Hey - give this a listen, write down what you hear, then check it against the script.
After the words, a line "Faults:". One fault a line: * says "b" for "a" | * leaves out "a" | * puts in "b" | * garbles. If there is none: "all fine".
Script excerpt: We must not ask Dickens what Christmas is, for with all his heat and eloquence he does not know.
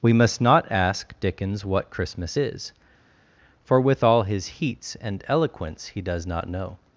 We must not ask Dickens what Christmas is, for with all his heats and eloquence he does not know.
Faults:
* says "heats" for "heat"